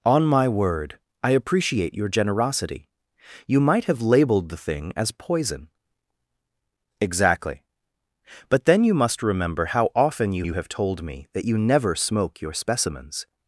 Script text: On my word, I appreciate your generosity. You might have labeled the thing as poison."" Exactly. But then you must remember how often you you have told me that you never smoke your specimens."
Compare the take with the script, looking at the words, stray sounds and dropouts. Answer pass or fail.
pass